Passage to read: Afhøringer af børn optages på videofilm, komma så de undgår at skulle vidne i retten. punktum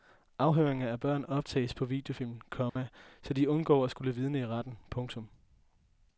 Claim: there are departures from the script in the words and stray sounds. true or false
true